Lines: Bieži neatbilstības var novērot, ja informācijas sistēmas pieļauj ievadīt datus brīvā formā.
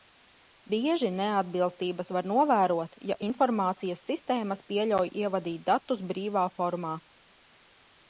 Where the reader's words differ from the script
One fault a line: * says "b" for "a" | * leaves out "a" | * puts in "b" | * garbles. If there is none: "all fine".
all fine